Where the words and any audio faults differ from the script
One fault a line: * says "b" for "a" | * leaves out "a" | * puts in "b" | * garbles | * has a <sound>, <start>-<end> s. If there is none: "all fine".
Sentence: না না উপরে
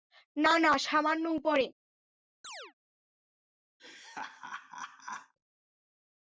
* puts in "সামান্য"
* has a chirp, 2.4-2.7 s
* has a laugh, 3.8-5.3 s